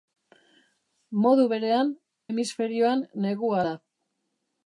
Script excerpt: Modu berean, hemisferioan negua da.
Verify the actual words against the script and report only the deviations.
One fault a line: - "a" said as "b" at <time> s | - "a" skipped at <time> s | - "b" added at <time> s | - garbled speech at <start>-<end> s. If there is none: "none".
none